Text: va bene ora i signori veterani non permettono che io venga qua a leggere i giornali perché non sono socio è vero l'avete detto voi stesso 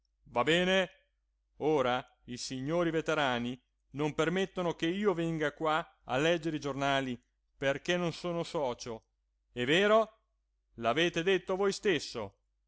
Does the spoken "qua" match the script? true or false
true